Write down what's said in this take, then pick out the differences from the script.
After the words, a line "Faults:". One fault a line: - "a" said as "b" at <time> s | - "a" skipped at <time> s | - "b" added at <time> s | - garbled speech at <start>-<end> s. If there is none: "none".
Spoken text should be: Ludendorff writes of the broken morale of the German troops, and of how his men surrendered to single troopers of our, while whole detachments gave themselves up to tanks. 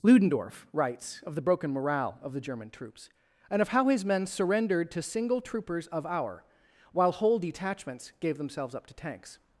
Ludendorff writes of the broken morale of the German troops, and of how his men surrendered to single troopers of our, while whole detachments gave themselves up to tanks.
Faults:
none